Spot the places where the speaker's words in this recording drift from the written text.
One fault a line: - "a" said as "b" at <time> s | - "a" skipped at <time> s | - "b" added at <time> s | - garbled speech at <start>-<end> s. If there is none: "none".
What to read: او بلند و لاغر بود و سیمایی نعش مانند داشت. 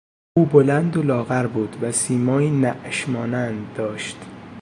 none